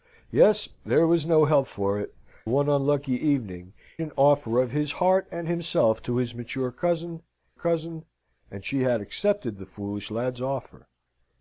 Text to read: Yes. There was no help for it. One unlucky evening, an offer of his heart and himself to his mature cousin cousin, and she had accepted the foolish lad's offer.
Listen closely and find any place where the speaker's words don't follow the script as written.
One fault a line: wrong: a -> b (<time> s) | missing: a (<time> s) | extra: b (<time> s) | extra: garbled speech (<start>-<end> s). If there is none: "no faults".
no faults